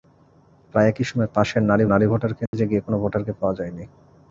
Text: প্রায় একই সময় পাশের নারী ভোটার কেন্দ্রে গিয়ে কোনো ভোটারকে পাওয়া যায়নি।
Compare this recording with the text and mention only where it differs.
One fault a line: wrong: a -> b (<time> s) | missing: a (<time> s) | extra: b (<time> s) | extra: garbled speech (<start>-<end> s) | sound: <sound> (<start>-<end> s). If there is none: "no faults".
extra: নারী (1.8 s)
sound: dropout (2.5-2.5 s)